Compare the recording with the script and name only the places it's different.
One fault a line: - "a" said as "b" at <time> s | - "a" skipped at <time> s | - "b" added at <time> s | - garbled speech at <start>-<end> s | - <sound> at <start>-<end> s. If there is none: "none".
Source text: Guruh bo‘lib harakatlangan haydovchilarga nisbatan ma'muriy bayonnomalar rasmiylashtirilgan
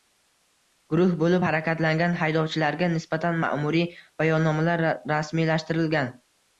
none